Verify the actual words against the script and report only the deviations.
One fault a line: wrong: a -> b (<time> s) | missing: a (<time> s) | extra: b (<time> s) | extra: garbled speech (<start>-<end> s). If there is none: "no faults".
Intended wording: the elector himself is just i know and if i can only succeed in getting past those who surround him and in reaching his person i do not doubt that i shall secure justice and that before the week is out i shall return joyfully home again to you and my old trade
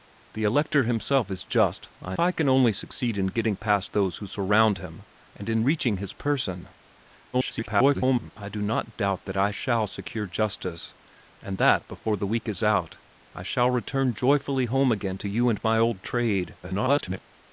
missing: know and if (2.1 s)
extra: garbled speech (7.3-8.3 s)
extra: garbled speech (16.6-17.2 s)